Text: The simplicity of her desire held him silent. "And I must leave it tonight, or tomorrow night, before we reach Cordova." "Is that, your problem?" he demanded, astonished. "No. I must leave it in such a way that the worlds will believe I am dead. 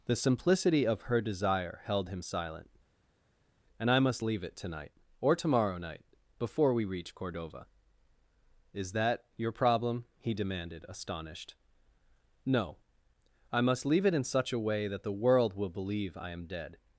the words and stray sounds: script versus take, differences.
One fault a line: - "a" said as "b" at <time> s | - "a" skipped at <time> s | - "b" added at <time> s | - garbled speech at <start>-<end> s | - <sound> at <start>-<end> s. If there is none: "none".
- "worlds" said as "world" at 15.1 s